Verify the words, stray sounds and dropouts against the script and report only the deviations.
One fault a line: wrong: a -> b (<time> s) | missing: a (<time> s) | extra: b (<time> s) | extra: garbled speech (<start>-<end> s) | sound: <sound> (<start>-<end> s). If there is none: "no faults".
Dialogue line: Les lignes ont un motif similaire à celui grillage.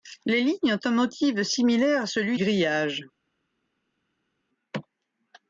no faults